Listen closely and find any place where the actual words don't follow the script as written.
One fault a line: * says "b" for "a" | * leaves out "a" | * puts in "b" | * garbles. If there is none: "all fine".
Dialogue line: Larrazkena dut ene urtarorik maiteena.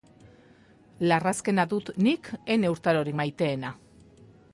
* puts in "nik"